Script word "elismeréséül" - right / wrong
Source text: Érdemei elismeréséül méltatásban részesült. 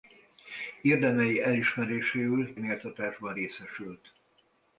right